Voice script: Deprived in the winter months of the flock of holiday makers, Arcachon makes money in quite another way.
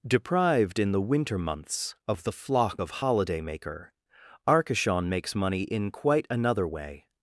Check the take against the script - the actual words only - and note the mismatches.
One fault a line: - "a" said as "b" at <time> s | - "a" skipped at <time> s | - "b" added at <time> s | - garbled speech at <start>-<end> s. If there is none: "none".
- "makers" said as "maker" at 3.4 s